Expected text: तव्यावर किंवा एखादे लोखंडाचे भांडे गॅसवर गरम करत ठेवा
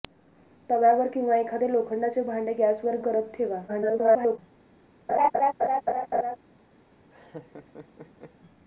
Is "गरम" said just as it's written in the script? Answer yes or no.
no